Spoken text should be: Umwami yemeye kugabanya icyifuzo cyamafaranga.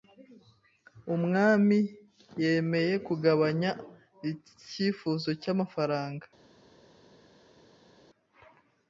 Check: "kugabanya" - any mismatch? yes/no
no